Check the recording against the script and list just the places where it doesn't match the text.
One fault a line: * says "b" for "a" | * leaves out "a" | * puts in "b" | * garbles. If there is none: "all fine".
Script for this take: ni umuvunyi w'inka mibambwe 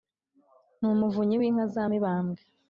* puts in "za"